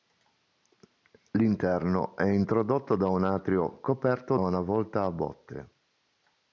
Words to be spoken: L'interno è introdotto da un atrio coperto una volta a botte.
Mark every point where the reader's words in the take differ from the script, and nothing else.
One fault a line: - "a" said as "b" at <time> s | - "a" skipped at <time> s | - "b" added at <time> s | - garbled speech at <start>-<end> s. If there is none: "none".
none